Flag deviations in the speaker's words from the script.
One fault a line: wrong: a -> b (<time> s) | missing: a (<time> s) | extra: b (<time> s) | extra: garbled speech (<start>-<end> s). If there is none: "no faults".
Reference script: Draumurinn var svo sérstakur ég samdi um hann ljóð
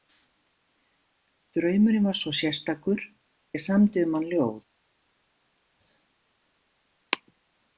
no faults